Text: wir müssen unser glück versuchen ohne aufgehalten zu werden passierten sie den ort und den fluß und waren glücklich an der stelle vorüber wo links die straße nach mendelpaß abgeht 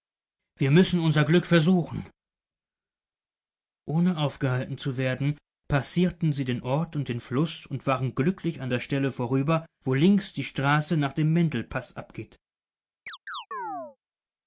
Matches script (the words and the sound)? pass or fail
fail